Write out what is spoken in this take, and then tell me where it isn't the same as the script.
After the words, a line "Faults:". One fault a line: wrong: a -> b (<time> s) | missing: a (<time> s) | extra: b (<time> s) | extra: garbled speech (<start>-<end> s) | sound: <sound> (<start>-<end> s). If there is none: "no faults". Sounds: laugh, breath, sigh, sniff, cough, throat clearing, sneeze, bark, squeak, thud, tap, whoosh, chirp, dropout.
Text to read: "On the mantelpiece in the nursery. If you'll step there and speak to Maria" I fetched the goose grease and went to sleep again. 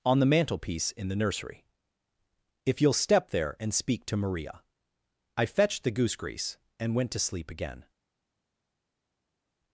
"On the mantelpiece in the nursery. If you'll step there and speak to Maria" I fetched the goose grease and went to sleep again.
Faults:
no faults